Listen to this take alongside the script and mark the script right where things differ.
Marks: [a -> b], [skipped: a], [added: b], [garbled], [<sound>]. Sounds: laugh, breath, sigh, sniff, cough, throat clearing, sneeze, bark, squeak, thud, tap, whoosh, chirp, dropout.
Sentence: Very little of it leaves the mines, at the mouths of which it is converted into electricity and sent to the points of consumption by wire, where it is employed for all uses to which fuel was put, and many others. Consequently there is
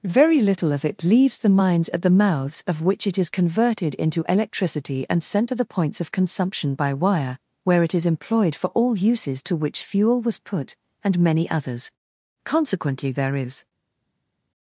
Very little of it leaves the mines, at the mouths of which it is converted into electricity and sent to the points of consumption by wire, where it is employed for all uses to which fuel was put, and many others. Consequently there is